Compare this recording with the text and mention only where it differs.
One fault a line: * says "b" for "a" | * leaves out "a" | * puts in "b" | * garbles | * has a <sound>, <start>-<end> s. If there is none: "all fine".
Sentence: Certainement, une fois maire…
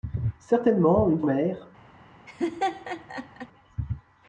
* leaves out "fois"
* has a laugh, 2.3-3.5 s